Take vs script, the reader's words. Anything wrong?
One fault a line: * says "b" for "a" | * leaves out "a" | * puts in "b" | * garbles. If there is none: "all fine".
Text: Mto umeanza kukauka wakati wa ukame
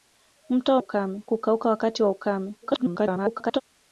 * says "ukame" for "umeanza"
* garbles